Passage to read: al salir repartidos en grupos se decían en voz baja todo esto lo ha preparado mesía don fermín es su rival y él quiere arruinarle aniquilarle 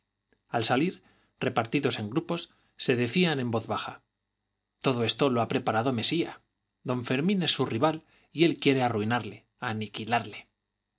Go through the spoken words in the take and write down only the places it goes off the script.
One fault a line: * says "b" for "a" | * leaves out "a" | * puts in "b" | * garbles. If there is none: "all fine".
all fine